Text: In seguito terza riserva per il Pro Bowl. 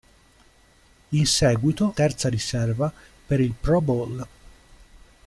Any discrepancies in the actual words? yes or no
no